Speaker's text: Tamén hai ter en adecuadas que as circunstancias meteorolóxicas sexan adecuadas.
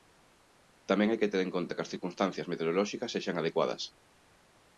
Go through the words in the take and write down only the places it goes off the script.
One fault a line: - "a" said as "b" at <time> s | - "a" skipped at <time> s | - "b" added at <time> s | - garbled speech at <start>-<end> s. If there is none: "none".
- "que" added at 1.2 s
- "adecuadas" said as "conta" at 1.6 s